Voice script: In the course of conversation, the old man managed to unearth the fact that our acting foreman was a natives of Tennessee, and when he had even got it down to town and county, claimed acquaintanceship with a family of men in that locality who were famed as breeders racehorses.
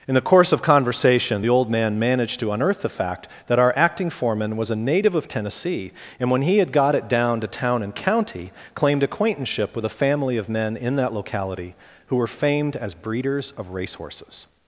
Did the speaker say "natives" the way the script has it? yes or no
no